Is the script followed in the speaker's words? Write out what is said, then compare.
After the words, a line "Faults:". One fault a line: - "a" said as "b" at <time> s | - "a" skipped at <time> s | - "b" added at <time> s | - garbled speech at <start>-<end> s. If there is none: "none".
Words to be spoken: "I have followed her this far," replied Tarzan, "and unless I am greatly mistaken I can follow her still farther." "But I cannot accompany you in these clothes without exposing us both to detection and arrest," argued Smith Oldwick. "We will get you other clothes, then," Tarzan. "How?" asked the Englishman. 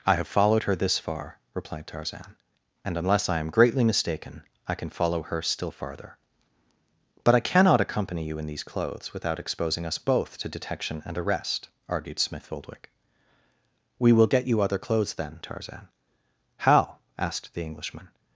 "I have followed her this far," replied Tarzan, "and unless I am greatly mistaken I can follow her still farther." "But I cannot accompany you in these clothes without exposing us both to detection and arrest," argued Smith Oldwick. "We will get you other clothes, then," Tarzan. "How?" asked the Englishman.
Faults:
none